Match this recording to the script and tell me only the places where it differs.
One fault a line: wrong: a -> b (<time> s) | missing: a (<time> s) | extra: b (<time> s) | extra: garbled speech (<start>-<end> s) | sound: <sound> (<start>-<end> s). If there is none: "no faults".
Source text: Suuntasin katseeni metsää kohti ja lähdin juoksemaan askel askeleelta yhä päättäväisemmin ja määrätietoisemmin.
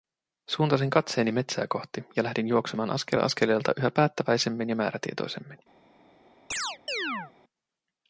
sound: chirp (6.5-7.3 s)